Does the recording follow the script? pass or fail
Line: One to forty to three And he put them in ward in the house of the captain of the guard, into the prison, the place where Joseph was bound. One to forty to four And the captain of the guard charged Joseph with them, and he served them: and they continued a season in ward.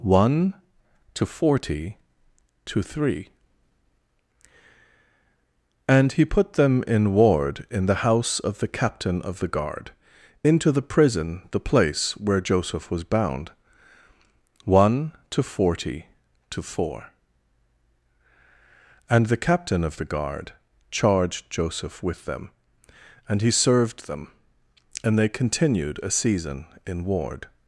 pass